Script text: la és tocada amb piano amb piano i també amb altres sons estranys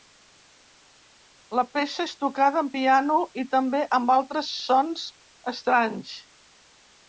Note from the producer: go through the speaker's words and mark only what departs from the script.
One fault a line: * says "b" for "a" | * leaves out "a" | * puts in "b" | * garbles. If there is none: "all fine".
* puts in "peça"
* leaves out "amb piano"